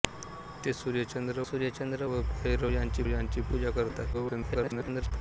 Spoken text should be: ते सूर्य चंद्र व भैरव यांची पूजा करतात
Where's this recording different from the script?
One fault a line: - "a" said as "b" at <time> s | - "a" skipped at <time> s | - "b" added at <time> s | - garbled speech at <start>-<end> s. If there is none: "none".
- "सूर्य चंद्र" added at 1.4 s
- "यांची" added at 3.1 s
- garbled speech at 4.1-5.1 s